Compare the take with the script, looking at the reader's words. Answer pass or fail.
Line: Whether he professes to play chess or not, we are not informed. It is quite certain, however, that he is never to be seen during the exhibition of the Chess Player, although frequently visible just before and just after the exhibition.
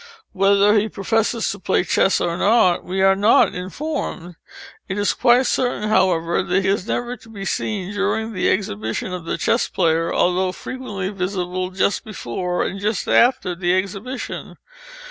fail